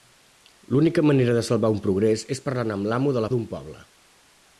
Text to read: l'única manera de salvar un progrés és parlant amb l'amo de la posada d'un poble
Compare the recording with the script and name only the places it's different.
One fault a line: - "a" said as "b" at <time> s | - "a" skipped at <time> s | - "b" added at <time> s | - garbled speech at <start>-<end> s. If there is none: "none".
- "posada" skipped at 3.3 s